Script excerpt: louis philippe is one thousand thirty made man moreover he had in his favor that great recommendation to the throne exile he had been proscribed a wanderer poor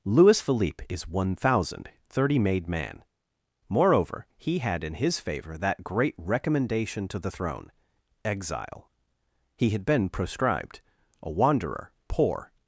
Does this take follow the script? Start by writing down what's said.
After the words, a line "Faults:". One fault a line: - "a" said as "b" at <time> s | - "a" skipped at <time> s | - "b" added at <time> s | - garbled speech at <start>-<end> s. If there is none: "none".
louis philippe is one thousand thirty made man moreover he had in his favor that great recommendation to the throne exile he had been proscribed a wanderer poor
Faults:
none